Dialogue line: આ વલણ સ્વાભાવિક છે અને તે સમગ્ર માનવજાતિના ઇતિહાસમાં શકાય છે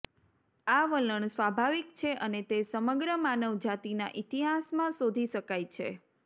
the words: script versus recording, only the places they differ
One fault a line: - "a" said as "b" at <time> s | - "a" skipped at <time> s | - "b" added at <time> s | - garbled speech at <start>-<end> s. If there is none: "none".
- "શોધી" added at 5.0 s